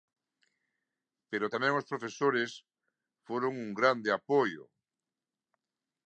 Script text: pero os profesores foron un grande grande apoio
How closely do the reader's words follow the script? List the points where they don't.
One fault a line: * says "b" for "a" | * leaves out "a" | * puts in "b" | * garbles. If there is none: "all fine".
* puts in "tamén"
* leaves out "grande"